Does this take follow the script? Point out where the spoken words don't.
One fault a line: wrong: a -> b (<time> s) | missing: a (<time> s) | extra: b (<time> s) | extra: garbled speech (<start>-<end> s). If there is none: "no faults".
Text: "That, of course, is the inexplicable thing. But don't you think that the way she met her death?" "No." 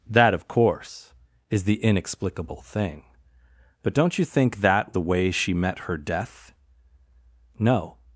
no faults